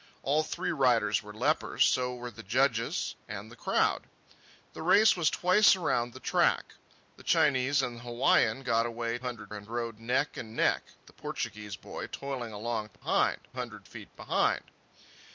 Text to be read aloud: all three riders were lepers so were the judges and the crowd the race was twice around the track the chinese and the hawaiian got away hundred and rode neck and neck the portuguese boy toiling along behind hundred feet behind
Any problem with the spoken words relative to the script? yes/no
no